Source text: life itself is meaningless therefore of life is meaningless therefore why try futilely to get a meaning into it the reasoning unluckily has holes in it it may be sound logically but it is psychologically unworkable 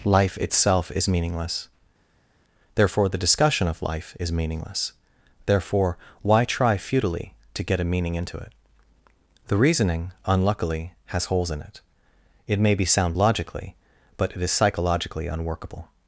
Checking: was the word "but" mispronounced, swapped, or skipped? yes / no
no